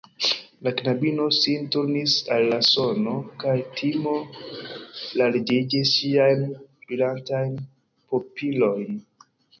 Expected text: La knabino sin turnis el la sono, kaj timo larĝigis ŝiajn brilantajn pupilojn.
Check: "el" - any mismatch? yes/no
yes